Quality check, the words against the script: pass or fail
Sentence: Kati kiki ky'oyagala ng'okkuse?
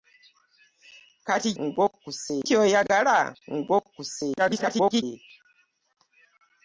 fail